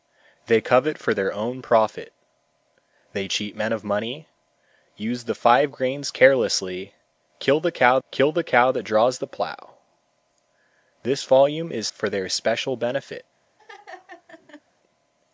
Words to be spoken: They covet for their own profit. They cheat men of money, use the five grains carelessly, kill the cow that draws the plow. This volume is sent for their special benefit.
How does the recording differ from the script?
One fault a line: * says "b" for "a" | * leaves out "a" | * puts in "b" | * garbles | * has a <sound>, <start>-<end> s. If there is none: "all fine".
* puts in "kill the cow"
* leaves out "sent"
* has a laugh, 13.6-14.6 s